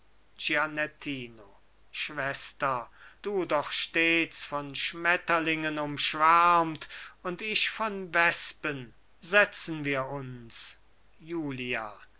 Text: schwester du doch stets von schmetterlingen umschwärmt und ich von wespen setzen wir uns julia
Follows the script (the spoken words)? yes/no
yes